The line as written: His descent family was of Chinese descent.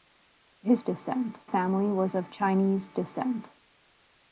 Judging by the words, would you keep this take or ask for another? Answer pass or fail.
pass